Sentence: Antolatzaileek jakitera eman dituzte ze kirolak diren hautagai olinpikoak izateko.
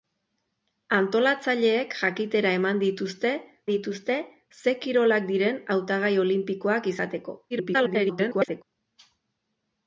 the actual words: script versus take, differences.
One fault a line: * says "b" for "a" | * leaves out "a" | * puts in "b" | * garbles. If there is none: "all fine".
* puts in "dituzte"
* garbles